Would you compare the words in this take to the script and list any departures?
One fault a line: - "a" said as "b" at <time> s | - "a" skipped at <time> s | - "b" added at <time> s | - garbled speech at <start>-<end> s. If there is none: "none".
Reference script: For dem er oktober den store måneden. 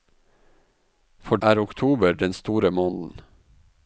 - "dem" skipped at 1.4 s